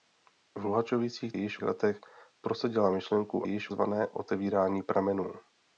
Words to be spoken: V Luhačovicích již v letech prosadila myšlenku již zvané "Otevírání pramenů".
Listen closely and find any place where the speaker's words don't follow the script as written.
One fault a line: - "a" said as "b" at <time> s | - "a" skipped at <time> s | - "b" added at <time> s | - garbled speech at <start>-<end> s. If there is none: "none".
none